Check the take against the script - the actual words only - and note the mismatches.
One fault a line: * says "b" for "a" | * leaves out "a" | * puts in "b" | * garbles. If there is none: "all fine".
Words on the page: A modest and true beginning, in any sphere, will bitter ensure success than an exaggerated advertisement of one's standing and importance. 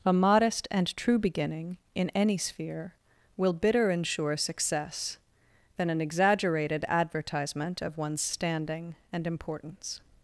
all fine